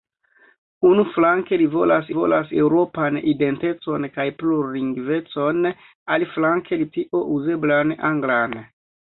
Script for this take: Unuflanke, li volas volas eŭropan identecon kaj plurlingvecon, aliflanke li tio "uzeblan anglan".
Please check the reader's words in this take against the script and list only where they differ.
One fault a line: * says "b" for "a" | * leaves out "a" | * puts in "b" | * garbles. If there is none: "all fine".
all fine